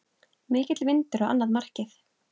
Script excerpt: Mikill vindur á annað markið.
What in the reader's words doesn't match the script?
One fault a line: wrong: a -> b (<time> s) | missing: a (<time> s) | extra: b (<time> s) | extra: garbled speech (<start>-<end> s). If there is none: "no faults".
no faults